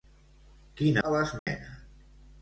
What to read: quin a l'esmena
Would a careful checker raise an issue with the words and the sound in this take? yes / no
yes